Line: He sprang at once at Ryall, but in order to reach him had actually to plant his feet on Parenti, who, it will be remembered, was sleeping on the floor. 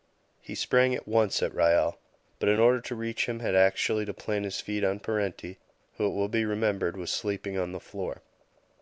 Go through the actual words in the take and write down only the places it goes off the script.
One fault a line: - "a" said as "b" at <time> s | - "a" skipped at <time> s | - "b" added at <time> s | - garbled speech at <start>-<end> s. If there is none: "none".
none